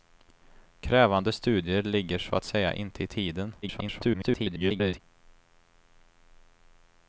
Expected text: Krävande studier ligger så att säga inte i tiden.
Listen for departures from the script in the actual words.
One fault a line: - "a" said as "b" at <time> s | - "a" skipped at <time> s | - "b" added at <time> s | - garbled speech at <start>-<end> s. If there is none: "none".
- garbled speech at 3.6-5.0 s